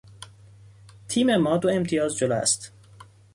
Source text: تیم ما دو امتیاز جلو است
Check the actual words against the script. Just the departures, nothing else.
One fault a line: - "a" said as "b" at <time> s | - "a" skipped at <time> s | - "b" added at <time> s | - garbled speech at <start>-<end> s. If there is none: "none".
none